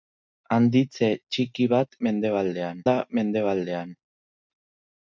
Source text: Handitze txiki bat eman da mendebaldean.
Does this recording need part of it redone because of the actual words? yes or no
yes